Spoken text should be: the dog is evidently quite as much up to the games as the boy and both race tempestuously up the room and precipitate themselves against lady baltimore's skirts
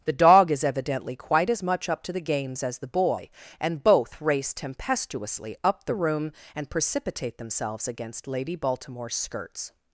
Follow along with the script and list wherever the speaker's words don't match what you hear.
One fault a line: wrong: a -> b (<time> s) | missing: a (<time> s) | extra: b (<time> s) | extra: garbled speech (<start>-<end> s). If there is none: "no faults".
no faults